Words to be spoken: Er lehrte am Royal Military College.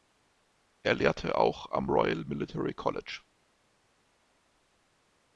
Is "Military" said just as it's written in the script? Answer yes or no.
yes